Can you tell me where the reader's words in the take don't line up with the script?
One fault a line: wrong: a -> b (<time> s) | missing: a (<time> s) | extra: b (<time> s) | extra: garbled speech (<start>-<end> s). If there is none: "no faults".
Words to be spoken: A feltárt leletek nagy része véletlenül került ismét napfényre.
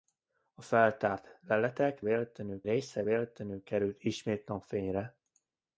wrong: nagy -> véletlenül (2.0 s)